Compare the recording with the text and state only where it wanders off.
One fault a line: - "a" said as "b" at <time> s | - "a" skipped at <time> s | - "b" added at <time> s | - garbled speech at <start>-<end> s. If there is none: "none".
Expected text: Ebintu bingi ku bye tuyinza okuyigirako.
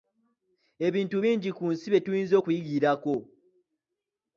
- "nsi" added at 1.7 s